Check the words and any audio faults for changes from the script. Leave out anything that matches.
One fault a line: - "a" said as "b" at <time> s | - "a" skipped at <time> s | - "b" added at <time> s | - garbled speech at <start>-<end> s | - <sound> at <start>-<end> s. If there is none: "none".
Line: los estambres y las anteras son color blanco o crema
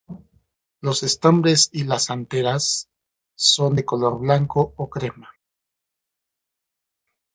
- "de" added at 3.7 s